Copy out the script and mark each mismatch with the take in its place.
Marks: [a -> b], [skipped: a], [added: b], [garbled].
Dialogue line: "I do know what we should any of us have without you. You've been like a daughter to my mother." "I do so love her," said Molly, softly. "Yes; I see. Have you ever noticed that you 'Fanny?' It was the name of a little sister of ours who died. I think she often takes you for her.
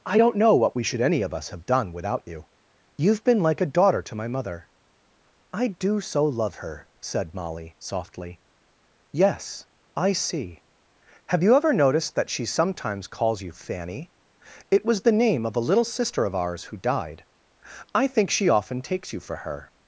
"I [do -> don't] know what we should any of us have [added: done] without you. You've been like a daughter to my mother." "I do so love her," said Molly, softly. "Yes; I see. Have you ever noticed that [added: she sometimes calls] you 'Fanny?' It was the name of a little sister of ours who died. I think she often takes you for her.